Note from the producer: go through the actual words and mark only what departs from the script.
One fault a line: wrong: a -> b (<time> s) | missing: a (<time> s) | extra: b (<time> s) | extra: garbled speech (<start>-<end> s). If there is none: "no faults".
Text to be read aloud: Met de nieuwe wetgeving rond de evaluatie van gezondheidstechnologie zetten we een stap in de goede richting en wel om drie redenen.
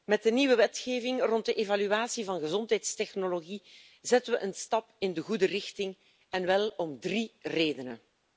no faults